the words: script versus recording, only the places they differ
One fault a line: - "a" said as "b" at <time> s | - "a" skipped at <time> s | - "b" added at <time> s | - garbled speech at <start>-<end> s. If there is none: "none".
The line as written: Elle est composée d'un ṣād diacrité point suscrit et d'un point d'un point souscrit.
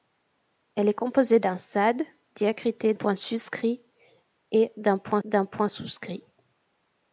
none